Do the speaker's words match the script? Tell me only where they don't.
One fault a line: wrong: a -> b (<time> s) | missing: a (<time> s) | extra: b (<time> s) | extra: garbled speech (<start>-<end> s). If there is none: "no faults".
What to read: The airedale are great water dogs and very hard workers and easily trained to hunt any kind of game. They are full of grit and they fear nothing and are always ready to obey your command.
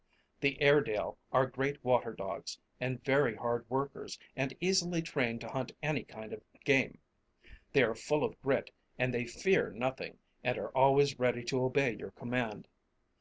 no faults